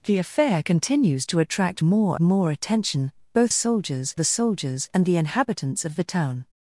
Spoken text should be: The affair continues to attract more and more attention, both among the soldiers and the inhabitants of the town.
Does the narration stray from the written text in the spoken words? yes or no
yes